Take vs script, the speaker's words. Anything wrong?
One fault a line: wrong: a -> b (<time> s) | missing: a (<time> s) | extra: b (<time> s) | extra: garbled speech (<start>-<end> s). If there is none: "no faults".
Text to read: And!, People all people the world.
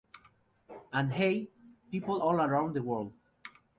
extra: Hey (1.1 s)
wrong: people -> around (2.4 s)